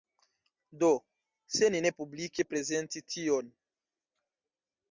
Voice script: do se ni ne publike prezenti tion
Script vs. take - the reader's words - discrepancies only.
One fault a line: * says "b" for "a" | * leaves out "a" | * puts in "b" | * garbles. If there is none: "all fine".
all fine